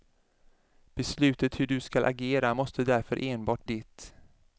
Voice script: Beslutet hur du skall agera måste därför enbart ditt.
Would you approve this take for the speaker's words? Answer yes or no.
yes